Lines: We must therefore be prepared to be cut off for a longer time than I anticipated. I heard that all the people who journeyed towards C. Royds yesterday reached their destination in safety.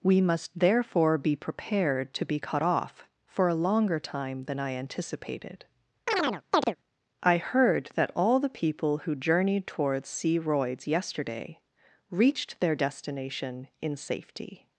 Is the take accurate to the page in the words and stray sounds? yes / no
no